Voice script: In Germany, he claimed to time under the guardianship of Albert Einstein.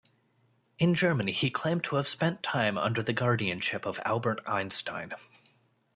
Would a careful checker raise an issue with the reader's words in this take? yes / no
yes